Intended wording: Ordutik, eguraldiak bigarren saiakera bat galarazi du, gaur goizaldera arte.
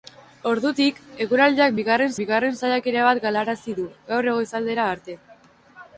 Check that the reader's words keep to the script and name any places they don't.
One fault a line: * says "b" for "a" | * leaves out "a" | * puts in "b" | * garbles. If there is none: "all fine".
* puts in "bigarren"